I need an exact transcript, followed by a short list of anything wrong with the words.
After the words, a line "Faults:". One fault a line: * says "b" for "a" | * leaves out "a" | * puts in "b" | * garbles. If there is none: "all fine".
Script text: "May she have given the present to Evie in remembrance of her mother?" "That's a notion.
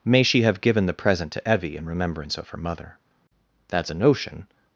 "May she have given the present to Evie in remembrance of her mother?" "That's a notion.
Faults:
all fine